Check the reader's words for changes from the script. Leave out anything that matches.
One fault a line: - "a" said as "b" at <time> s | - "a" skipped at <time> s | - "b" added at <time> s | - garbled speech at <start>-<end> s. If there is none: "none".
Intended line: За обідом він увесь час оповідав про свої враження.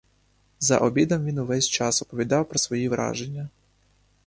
none